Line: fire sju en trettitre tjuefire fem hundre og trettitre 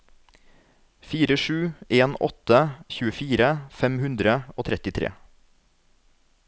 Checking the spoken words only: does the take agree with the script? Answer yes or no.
no